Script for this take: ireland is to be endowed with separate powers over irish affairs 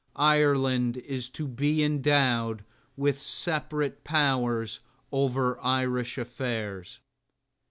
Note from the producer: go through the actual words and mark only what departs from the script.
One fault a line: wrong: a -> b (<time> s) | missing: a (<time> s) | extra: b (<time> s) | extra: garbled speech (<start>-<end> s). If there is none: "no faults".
no faults